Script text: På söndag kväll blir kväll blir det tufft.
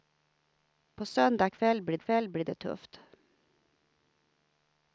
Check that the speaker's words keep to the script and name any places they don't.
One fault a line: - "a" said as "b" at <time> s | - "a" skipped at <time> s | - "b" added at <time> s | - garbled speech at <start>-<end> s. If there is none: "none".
none